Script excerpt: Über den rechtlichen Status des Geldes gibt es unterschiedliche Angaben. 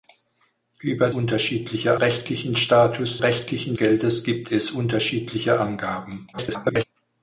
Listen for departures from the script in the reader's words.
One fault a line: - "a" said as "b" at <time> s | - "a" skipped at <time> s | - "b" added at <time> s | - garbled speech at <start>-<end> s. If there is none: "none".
- "den" said as "unterschiedliche" at 1.1 s
- "des" said as "rechtlichen" at 3.2 s
- garbled speech at 6.3-6.8 s